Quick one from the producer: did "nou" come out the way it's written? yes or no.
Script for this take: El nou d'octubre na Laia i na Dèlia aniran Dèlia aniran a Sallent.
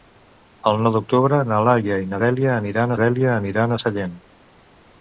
yes